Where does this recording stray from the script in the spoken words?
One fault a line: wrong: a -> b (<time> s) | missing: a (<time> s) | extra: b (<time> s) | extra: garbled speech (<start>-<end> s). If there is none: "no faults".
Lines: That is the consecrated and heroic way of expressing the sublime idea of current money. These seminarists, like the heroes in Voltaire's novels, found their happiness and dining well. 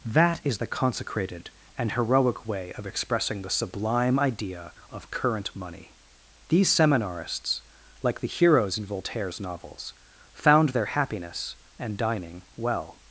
no faults